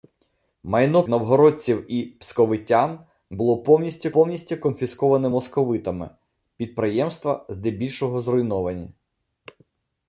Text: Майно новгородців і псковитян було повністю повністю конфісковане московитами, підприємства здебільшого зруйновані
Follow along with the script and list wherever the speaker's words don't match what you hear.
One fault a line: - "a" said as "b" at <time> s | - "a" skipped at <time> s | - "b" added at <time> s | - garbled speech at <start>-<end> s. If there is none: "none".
none